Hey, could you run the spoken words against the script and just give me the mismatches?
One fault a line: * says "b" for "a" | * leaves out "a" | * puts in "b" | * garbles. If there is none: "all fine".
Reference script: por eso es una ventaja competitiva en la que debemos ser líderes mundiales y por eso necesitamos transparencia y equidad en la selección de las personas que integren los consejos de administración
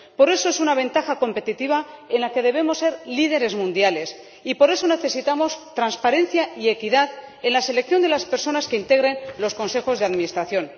all fine